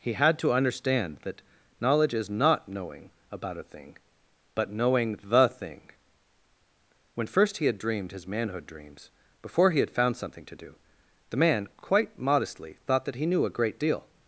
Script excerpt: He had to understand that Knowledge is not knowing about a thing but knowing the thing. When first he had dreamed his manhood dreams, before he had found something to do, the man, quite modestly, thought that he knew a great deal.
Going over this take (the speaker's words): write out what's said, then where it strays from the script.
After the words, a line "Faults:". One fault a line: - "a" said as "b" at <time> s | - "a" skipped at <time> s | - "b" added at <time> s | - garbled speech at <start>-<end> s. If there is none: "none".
He had to understand that Knowledge is not knowing about a thing but knowing the thing. When first he had dreamed his manhood dreams, before he had found something to do, the man, quite modestly, thought that he knew a great deal.
Faults:
none